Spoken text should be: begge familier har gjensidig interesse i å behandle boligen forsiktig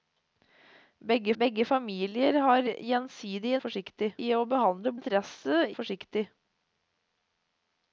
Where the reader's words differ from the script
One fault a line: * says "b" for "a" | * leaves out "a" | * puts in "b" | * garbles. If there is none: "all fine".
* puts in "begge"
* says "forsiktig" for "interesse"
* says "interesse" for "boligen"